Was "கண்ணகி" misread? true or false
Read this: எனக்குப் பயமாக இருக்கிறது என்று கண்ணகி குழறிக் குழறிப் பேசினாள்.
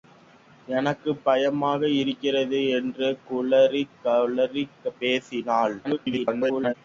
true